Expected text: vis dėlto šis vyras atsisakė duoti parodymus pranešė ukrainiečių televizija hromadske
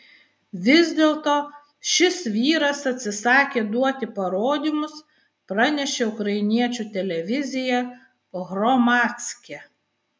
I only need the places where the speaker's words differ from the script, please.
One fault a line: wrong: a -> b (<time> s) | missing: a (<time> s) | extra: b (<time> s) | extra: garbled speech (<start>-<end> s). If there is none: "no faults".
no faults